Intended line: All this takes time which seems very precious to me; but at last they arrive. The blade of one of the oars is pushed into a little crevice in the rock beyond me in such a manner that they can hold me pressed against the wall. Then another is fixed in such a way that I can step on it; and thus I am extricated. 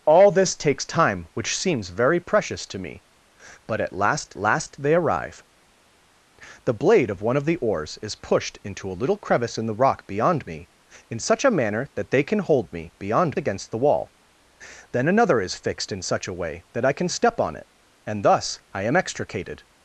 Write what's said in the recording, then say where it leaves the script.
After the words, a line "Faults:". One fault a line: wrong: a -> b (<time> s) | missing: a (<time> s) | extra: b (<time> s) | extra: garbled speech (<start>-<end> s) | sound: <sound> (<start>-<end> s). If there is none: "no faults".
All this takes time which seems very precious to me; but at last last they arrive. The blade of one of the oars is pushed into a little crevice in the rock beyond me in such a manner that they can hold me beyond against the wall. Then another is fixed in such a way that I can step on it; and thus I am extricated.
Faults:
extra: last (4.4 s)
wrong: pressed -> beyond (13.0 s)